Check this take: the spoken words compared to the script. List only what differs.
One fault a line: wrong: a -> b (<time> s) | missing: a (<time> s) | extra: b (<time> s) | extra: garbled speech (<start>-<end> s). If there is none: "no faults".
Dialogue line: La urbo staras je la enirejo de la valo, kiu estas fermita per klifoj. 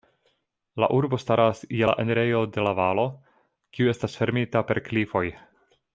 no faults